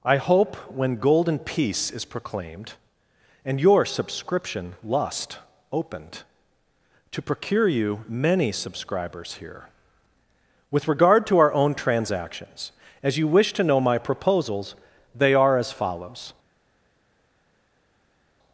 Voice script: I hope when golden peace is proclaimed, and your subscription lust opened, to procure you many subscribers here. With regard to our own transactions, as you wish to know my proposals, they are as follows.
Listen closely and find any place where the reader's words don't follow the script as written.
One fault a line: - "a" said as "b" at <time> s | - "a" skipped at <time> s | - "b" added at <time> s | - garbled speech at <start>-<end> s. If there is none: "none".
none